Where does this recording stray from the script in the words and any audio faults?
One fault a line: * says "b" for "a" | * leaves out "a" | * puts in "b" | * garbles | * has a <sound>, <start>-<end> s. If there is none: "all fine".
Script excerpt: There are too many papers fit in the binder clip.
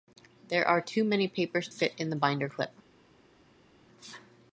all fine